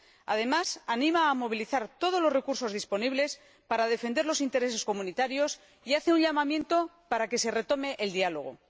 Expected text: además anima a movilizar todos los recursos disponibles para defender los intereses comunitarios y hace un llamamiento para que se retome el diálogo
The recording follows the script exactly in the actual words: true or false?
true